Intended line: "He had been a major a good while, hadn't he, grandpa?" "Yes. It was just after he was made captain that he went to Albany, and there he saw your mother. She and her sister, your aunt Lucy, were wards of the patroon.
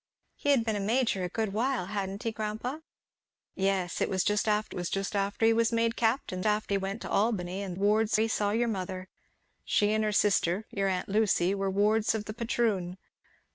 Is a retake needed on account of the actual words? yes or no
yes